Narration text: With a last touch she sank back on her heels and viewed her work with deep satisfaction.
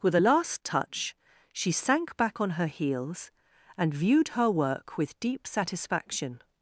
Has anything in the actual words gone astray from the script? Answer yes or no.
no